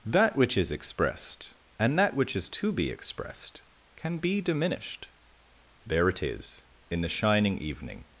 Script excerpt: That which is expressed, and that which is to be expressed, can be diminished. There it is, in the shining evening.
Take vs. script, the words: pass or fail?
pass